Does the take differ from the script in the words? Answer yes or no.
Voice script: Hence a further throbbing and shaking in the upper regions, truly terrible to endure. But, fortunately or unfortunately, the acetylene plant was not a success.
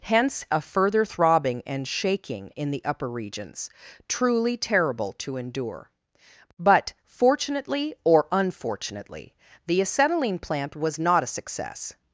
no